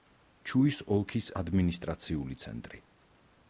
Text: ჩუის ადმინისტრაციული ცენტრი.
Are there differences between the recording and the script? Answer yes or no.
yes